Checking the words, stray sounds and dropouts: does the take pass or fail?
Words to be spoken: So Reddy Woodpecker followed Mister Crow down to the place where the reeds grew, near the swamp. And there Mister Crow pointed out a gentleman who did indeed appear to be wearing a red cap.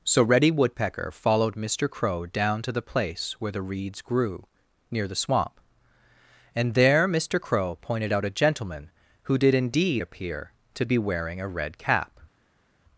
pass